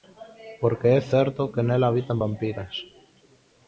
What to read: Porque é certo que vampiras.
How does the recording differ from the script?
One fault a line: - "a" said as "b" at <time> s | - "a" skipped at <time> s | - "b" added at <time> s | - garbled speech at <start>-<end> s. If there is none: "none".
- "nela habitan" added at 1.7 s